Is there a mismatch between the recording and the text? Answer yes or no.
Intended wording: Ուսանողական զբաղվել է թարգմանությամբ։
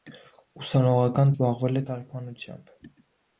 no